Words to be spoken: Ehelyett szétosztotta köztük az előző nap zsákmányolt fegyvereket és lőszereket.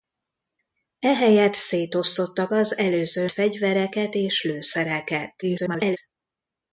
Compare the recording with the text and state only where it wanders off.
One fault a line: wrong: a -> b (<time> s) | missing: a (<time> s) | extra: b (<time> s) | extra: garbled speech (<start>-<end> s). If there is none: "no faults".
missing: köztük (2.5 s)
missing: nap zsákmányolt (3.3 s)
extra: garbled speech (5.4-6.0 s)